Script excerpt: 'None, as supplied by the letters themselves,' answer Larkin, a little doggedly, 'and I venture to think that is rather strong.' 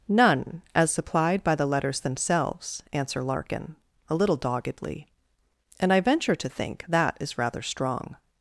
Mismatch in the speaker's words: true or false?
false